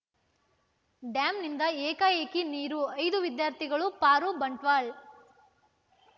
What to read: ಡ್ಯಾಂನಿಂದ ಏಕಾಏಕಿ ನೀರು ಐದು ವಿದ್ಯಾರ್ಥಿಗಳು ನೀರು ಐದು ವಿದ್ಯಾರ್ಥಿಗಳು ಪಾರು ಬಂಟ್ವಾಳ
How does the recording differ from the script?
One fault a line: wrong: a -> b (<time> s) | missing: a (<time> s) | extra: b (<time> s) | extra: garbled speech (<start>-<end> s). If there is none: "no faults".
missing: ನೀರು ಐದು ವಿದ್ಯಾರ್ಥಿಗಳು (3.9 s)